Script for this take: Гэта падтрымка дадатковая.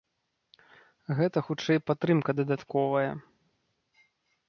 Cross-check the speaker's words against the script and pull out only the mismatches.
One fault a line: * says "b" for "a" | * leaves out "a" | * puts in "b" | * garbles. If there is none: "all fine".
* puts in "хутчэй"